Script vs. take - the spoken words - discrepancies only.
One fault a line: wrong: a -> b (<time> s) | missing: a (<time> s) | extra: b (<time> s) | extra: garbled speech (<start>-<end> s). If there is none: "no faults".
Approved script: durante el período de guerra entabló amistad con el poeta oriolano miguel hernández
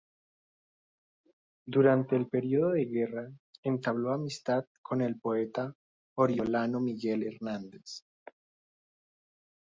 no faults